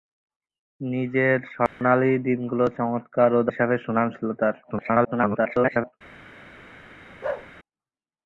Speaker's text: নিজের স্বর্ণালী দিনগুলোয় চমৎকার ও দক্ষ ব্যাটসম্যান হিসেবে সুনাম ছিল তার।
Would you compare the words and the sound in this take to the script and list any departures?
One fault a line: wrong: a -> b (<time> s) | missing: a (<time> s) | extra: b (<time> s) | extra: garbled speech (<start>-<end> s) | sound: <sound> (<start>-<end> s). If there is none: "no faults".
sound: dropout (1.7-1.8 s)
missing: দক্ষ ব্যাটসম্যান (3.5 s)
extra: garbled speech (4.6-5.9 s)
sound: bark (7.2-7.5 s)